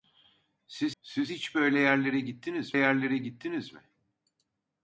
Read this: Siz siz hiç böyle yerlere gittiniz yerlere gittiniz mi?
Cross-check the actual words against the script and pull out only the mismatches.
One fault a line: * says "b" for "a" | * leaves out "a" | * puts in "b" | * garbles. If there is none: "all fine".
all fine